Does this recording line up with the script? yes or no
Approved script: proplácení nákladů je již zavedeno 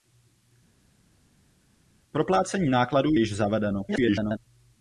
no